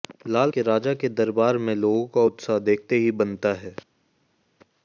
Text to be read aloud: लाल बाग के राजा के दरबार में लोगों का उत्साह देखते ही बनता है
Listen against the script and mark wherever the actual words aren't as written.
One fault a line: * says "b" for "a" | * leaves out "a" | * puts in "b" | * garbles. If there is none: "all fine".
* leaves out "बाग"